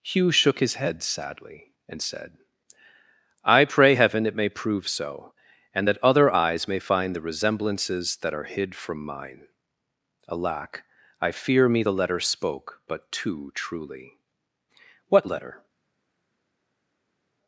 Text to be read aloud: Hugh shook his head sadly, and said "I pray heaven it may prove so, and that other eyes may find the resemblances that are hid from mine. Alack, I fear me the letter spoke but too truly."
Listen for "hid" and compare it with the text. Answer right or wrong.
right